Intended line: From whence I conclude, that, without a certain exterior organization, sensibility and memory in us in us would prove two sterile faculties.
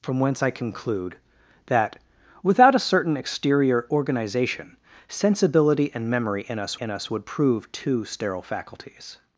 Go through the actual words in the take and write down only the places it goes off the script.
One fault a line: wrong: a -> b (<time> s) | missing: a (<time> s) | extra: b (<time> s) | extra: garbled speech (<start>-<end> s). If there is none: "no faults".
no faults